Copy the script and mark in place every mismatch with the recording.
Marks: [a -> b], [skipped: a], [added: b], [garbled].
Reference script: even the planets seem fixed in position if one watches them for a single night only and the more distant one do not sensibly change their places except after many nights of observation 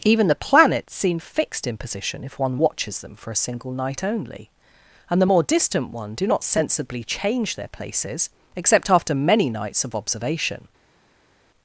even the planets seem fixed in position if one watches them for a single night only and the more distant one do not sensibly change their places except after many nights of observation